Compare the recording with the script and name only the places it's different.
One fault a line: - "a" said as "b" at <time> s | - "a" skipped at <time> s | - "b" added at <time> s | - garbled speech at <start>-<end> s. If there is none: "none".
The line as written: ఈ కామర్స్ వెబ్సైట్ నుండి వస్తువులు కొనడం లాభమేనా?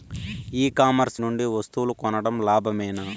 - "వెబ్సైట్" skipped at 1.2 s